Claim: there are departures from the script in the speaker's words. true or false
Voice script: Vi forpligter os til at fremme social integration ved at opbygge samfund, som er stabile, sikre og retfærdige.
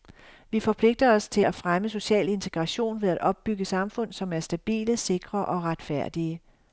false